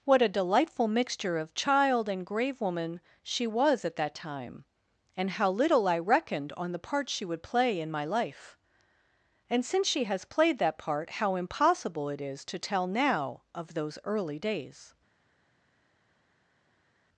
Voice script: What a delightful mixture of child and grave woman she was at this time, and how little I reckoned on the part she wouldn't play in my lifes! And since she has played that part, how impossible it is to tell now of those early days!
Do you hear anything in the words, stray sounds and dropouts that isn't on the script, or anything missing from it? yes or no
yes